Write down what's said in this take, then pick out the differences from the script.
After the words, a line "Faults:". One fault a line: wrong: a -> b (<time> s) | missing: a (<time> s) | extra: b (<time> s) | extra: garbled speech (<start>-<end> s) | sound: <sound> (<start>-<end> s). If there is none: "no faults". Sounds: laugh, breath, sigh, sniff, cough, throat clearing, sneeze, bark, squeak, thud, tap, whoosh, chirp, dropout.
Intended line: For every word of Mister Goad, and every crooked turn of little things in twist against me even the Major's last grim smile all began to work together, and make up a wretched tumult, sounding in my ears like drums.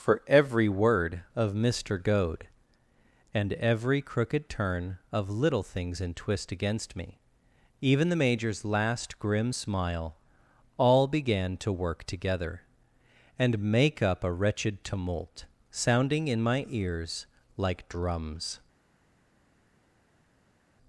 For every word of Mister Goad, and every crooked turn of little things in twist against me even the Major's last grim smile all began to work together, and make up a wretched tumult, sounding in my ears like drums.
Faults:
no faults